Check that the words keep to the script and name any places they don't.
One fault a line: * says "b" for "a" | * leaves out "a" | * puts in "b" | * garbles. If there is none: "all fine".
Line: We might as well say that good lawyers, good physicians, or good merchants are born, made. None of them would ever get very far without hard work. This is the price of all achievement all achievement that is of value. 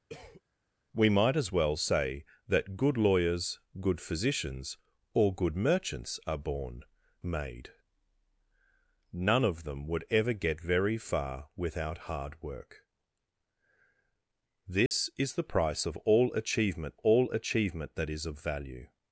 all fine